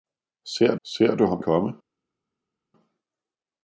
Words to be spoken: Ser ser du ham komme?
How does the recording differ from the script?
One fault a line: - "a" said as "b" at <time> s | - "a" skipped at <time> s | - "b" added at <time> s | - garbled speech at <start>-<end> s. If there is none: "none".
none